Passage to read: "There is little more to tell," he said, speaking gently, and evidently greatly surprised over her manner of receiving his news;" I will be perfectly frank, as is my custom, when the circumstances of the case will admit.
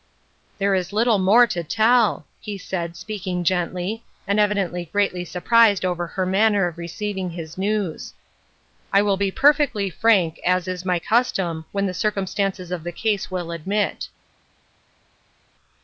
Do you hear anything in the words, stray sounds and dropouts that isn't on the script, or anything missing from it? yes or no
no